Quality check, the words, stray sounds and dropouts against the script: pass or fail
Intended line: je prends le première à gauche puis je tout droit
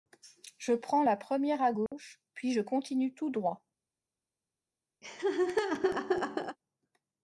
fail